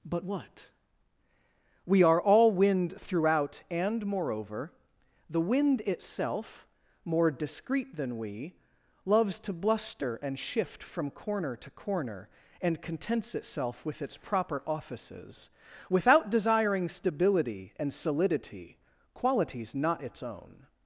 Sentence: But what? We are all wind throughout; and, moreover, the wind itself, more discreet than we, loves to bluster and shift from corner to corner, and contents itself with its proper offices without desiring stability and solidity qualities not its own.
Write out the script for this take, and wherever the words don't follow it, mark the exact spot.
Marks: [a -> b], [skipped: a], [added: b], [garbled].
But what? We are all wind throughout; and, moreover, the wind itself, more discreet than we, loves to bluster and shift from corner to corner, and contents itself with its proper offices without desiring stability and solidity qualities not its own.